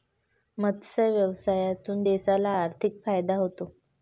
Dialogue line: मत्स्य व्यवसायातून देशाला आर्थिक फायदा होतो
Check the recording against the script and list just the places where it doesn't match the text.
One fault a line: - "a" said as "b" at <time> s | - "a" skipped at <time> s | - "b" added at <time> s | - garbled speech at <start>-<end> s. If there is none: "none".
none